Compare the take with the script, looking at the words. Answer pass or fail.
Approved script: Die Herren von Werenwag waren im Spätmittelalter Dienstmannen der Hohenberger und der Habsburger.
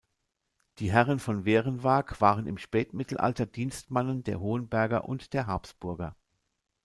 pass